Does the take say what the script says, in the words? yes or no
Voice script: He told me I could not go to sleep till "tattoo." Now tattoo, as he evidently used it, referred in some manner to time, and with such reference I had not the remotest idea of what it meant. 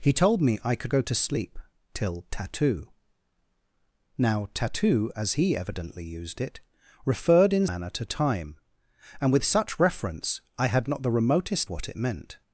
no